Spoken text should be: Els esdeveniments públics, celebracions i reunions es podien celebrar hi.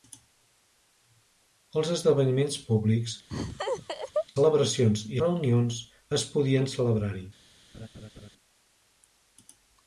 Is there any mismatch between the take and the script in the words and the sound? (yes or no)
yes